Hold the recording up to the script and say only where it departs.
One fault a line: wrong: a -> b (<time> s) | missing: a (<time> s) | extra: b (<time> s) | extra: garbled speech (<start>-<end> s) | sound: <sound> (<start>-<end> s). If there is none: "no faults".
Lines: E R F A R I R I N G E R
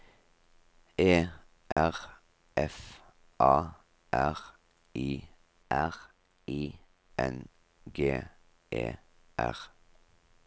sound: dropout (1.7-1.8 s)